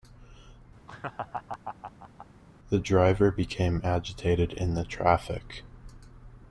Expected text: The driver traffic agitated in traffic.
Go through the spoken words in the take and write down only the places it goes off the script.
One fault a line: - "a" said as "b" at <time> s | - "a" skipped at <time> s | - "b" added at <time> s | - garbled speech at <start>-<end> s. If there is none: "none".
- "traffic" said as "became" at 3.3 s
- "the" added at 4.7 s